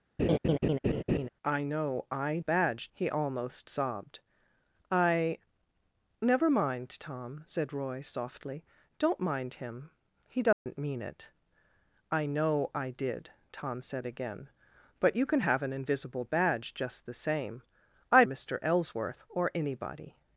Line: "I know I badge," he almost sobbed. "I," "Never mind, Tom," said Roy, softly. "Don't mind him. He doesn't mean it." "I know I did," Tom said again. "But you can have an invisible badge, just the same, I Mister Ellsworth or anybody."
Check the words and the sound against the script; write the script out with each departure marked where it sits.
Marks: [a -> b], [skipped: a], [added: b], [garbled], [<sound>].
[laugh] "I know I badge," he almost sobbed. "I," "Never mind, Tom," said Roy, softly. "Don't mind him. He doesn't [dropout] mean it." "I know I did," Tom said again. "But you can have an invisible badge, just the same, I Mister Ellsworth or anybody."